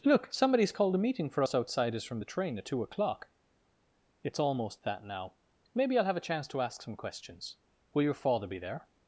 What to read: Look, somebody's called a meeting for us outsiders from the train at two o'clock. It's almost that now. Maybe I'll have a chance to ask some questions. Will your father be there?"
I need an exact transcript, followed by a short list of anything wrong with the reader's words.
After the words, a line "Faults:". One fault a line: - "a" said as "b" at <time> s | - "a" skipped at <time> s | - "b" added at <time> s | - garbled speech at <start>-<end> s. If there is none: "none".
Look, somebody's called a meeting for us outsiders from the train at two o'clock. It's almost that now. Maybe I'll have a chance to ask some questions. Will your father be there?"
Faults:
none